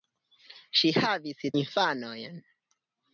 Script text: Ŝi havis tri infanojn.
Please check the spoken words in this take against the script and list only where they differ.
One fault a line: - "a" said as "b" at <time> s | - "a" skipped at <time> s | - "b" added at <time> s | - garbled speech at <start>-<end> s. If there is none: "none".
- "tri" skipped at 1.4 s